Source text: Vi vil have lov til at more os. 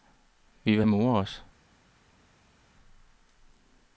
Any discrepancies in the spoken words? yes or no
yes